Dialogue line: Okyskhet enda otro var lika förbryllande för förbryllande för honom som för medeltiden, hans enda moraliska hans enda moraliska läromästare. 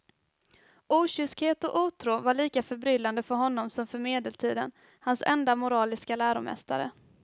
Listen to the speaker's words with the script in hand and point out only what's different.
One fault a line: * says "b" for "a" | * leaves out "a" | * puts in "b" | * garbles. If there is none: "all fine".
* says "och" for "enda"
* leaves out "förbryllande för"
* leaves out "hans enda moraliska"